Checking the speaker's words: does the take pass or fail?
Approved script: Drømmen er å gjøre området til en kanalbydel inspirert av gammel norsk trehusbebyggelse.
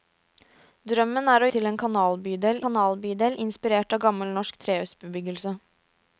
fail